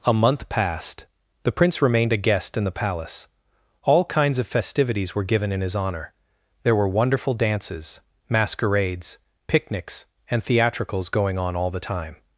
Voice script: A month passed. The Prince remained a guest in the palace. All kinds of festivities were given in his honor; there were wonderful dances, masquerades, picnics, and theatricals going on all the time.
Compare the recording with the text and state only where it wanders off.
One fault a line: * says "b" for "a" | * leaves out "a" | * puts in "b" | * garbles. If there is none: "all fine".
all fine